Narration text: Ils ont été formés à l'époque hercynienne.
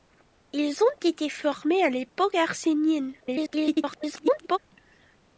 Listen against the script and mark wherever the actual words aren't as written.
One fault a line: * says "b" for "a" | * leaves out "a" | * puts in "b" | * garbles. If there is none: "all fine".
* garbles